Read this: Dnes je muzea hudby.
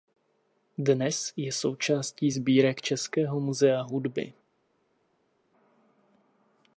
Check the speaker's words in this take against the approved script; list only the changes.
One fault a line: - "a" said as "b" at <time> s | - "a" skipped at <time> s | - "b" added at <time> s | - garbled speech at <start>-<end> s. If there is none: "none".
- "součástí sbírek Českého" added at 1.5 s